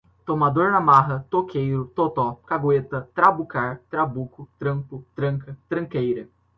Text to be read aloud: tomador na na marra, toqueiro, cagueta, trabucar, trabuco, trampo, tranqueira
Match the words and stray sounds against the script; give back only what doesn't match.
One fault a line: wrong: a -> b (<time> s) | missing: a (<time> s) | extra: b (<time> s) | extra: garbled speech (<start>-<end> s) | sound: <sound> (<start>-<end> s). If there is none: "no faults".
missing: na (0.8 s)
extra: totó (1.9 s)
extra: tranca (5.1 s)